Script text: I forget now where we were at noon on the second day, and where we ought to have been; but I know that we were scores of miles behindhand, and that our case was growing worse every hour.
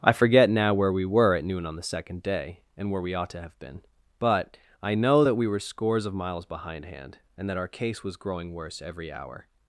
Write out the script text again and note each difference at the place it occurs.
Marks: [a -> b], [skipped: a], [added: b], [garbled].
I forget now where we were at noon on the second day, and where we ought to have been; but I know that we were scores of miles behindhand, and that our case was growing worse every hour.